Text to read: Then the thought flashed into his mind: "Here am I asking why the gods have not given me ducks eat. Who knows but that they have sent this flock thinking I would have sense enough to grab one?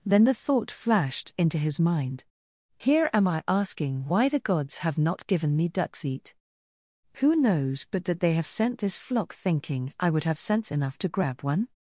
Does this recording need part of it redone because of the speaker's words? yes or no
no